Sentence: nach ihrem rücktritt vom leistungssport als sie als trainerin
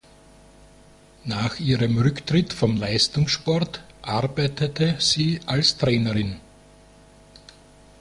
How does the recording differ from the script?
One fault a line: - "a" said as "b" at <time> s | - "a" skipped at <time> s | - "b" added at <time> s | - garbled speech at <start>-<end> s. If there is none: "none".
- "als" said as "arbeitete" at 4.0 s